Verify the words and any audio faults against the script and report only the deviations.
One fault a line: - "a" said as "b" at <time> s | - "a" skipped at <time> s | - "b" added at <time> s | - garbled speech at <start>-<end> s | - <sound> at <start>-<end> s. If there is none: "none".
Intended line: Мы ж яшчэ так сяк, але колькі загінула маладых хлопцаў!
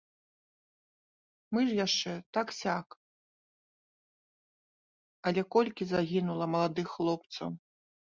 none